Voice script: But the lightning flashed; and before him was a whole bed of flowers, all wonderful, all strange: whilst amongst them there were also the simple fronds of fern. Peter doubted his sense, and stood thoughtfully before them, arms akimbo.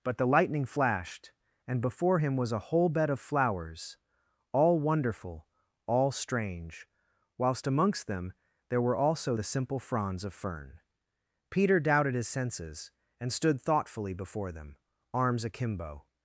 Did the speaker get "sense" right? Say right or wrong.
wrong